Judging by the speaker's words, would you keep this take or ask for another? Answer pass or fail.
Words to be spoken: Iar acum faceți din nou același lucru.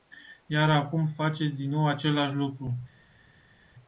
pass